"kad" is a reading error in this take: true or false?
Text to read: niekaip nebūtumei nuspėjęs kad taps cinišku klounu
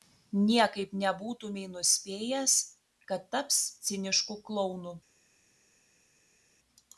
false